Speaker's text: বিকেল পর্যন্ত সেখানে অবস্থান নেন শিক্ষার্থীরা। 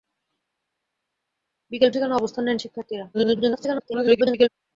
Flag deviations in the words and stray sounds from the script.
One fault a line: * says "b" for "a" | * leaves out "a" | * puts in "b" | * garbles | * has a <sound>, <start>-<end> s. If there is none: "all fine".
* leaves out "পর্যন্ত"
* garbles